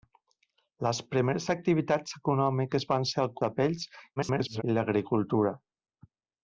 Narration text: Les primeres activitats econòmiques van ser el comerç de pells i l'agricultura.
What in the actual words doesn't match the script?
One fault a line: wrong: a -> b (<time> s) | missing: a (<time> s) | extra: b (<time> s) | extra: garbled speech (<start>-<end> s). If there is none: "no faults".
missing: comerç (3.3 s)
extra: garbled speech (4.2-4.6 s)